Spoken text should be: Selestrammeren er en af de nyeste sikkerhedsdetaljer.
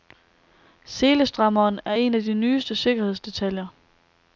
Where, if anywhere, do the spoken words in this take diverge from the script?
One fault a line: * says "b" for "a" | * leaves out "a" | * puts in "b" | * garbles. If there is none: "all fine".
all fine